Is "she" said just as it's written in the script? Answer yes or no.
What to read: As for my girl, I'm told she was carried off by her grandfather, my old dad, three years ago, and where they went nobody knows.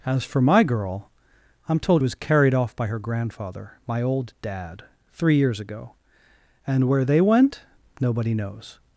no